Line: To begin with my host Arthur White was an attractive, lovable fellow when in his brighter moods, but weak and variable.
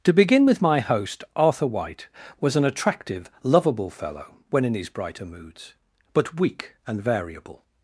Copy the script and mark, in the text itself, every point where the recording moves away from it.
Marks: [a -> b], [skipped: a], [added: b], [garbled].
To begin with my host Arthur White was an attractive, lovable fellow when in his brighter moods, but weak and variable.